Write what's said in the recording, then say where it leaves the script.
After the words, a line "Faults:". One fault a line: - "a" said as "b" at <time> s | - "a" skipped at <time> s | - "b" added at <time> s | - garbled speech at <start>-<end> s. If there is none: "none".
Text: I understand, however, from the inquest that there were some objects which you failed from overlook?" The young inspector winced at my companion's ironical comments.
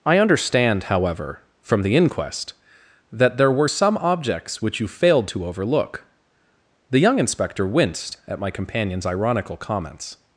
I understand, however, from the inquest that there were some objects which you failed to overlook?" The young inspector winced at my companion's ironical comments.
Faults:
- "from" said as "to" at 5.3 s